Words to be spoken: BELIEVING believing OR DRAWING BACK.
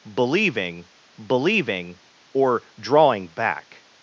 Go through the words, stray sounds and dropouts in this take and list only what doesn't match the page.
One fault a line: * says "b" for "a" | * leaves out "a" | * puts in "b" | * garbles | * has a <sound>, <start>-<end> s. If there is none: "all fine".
all fine